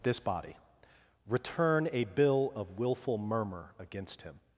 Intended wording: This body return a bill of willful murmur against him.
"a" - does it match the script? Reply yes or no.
yes